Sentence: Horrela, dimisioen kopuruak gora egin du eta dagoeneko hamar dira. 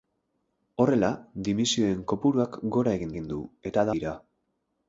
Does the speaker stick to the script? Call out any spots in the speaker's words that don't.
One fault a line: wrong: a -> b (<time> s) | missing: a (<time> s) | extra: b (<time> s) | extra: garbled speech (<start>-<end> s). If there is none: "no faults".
extra: egin (3.1 s)
missing: dagoeneko hamar (3.9 s)